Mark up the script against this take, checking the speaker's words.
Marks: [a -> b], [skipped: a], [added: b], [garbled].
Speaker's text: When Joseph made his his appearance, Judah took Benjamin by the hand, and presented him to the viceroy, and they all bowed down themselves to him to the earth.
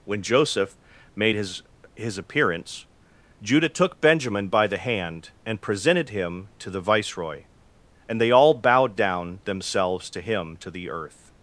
When Joseph made his his appearance, Judah took Benjamin by the hand, and presented him to the viceroy, and they all bowed down themselves to him to the earth.